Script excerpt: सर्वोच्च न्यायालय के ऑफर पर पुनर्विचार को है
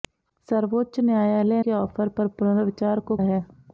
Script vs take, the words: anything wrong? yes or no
no